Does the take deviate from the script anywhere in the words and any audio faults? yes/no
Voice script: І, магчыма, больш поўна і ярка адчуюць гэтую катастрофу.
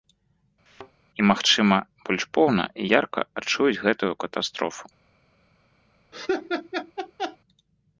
yes